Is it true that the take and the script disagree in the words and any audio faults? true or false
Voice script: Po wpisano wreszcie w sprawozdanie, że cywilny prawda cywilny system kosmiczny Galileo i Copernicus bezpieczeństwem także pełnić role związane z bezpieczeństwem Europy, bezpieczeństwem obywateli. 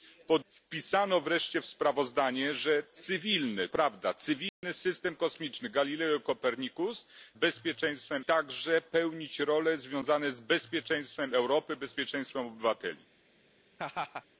true